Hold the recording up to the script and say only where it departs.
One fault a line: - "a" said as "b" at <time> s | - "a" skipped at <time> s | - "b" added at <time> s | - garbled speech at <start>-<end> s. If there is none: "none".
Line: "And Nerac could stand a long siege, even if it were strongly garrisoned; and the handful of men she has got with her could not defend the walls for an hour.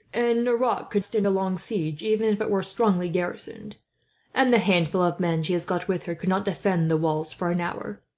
none